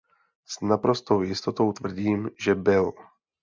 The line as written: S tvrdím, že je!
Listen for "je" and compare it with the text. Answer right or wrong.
wrong